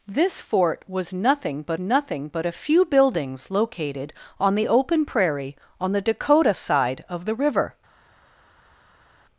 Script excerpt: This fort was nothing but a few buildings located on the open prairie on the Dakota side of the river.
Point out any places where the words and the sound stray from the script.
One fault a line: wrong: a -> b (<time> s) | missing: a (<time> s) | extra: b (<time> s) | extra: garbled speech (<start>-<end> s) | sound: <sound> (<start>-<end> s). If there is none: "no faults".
extra: nothing but (1.8 s)